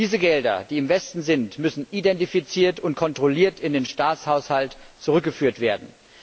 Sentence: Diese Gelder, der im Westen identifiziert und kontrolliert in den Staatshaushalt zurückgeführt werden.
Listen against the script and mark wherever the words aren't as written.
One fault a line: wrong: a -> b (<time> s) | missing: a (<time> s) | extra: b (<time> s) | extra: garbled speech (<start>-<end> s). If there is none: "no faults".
wrong: der -> die (0.7 s)
extra: sind müssen (1.2 s)